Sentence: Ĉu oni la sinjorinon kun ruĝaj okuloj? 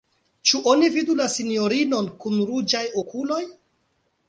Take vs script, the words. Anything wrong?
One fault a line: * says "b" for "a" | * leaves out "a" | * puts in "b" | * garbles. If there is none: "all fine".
* puts in "vidu"